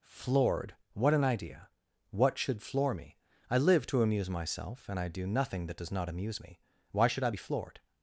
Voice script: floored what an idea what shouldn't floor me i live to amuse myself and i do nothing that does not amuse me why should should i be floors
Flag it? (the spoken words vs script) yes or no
yes